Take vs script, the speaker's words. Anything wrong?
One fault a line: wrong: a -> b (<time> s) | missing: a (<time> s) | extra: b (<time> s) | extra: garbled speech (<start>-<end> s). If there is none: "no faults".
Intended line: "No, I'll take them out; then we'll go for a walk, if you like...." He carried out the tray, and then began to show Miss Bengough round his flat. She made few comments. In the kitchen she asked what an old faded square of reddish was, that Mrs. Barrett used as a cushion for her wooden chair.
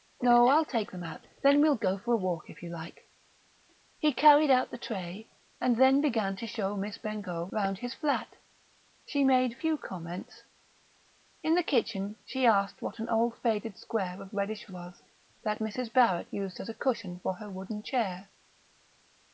no faults